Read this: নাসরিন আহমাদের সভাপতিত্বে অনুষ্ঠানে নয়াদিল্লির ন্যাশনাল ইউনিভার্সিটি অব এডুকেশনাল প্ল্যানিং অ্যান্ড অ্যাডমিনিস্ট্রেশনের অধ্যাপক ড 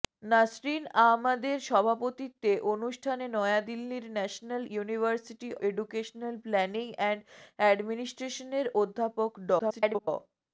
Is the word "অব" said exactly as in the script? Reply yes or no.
no